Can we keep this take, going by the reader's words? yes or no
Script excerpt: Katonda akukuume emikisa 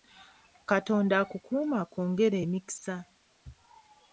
no